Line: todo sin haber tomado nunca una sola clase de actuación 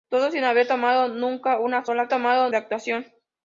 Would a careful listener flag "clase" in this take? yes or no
yes